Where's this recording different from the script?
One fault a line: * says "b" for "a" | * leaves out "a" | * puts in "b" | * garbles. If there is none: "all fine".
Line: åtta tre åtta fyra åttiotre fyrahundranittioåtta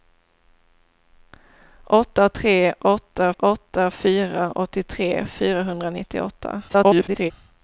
* puts in "åtta"
* garbles